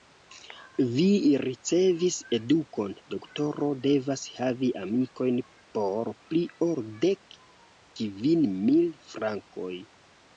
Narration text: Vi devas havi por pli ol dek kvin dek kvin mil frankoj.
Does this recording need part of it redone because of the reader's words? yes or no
yes